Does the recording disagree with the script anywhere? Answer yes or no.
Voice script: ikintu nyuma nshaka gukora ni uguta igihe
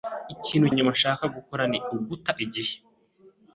no